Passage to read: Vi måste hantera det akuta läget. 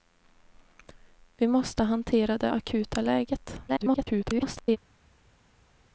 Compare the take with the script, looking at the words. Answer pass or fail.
fail